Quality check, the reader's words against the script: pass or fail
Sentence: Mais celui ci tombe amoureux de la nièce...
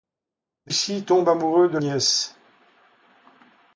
fail